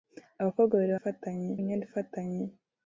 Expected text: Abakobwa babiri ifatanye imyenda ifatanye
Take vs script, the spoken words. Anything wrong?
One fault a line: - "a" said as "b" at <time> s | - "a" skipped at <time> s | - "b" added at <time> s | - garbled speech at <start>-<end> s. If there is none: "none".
none